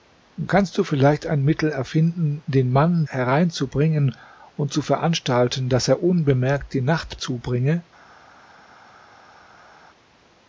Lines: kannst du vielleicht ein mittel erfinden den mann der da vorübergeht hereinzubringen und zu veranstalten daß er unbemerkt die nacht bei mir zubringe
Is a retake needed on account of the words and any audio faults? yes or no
yes